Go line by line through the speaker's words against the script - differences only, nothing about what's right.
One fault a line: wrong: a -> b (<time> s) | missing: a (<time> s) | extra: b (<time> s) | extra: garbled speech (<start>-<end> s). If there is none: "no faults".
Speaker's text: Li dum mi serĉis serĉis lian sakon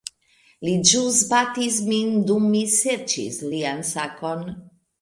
extra: ĵus batis min (0.9 s)
missing: serĉis (3.4 s)